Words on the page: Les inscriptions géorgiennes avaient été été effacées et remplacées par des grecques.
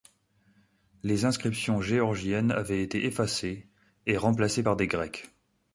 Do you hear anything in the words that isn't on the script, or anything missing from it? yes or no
yes